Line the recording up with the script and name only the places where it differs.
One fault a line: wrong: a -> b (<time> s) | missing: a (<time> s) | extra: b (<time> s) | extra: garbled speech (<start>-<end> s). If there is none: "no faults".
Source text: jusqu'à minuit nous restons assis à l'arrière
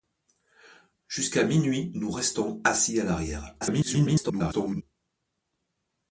extra: garbled speech (3.6-4.8 s)